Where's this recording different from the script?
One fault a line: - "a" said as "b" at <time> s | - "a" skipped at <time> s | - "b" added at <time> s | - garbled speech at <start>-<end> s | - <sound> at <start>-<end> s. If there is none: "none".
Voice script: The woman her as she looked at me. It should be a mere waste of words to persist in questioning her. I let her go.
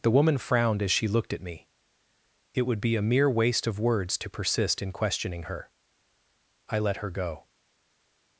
- "her" said as "frowned" at 0.4 s
- "should" said as "would" at 2.6 s